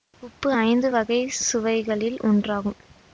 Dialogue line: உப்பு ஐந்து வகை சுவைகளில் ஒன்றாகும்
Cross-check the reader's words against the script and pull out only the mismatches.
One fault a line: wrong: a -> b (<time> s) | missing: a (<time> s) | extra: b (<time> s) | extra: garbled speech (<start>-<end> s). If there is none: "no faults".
no faults